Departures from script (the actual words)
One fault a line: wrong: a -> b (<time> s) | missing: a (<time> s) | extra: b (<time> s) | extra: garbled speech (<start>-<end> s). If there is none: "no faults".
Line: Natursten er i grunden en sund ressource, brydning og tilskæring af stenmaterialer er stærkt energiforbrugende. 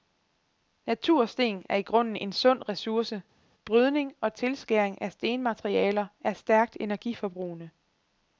no faults